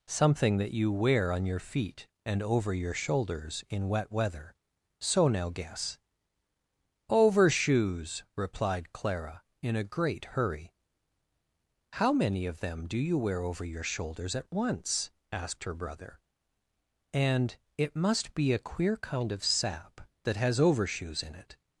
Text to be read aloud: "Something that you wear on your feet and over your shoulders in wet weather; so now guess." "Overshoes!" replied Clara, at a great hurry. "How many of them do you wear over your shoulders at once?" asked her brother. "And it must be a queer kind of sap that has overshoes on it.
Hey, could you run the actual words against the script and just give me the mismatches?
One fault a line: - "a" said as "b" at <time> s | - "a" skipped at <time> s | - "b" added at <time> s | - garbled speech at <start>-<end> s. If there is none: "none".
- "at" said as "in" at 9.6 s
- "on" said as "in" at 21.2 s